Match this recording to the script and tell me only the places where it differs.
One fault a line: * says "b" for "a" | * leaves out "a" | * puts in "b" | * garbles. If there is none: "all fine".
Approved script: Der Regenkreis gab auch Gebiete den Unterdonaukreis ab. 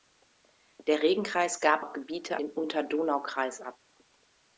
all fine